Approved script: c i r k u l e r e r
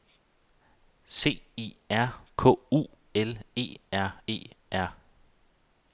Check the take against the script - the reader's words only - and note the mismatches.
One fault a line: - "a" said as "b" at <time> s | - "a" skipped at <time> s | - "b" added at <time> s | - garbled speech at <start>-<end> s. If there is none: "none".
none